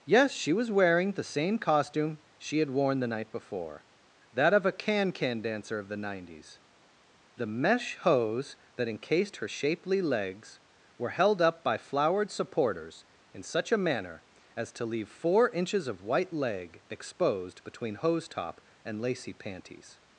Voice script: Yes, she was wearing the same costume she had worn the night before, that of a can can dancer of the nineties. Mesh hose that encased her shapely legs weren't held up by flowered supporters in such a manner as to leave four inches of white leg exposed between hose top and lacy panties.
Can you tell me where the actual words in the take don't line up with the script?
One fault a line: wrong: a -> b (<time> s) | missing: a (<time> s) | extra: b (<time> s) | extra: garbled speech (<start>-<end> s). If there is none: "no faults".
extra: The (7.3 s)
wrong: weren't -> were (11.0 s)